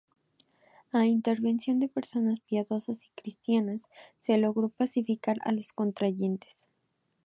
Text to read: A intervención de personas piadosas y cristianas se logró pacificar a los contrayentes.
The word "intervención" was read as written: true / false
true